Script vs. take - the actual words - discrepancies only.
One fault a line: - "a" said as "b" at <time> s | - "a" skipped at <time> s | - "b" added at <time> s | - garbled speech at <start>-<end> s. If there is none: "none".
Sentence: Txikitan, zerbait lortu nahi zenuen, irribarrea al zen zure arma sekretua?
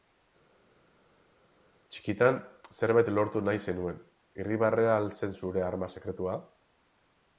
none